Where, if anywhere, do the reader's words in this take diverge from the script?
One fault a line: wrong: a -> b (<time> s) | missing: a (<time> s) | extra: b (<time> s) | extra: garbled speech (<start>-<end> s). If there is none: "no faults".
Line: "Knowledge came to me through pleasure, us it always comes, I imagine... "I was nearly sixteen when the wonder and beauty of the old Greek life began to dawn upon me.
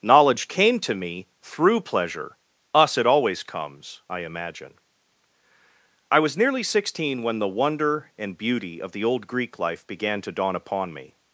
no faults